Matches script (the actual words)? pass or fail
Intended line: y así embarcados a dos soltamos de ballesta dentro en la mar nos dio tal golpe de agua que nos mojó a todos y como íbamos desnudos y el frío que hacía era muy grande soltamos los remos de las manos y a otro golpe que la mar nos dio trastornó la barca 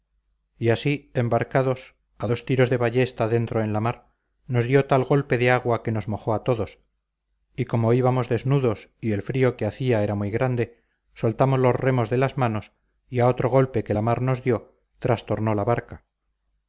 fail